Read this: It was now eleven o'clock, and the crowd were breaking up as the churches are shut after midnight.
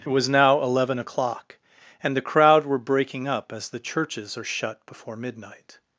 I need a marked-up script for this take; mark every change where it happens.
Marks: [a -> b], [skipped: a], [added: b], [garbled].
It was now eleven o'clock, and the crowd were breaking up as the churches are shut [after -> before] midnight.